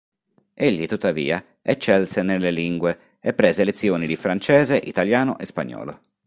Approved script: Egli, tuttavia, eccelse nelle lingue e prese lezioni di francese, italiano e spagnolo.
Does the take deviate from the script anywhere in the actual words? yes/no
no